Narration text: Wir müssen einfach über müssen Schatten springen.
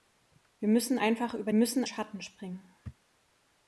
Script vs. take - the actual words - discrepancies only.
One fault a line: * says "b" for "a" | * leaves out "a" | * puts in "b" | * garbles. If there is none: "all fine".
all fine